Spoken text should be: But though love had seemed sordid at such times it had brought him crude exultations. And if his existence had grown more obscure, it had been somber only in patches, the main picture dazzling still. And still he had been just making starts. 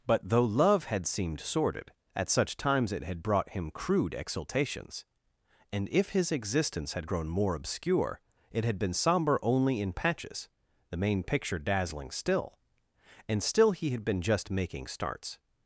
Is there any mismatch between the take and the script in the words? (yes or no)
no